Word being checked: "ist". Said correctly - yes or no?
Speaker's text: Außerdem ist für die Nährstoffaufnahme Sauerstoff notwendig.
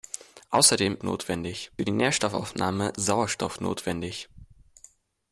no